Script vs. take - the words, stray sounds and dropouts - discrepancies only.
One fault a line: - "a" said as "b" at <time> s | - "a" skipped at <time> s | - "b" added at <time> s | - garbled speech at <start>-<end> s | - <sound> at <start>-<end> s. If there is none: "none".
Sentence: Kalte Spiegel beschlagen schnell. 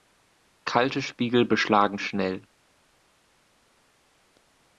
none